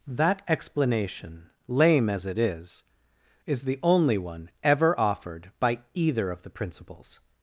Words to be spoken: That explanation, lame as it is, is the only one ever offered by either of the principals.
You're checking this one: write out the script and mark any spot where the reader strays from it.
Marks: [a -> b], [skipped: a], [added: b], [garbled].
That explanation, lame as it is, is the only one ever offered by either of the principals.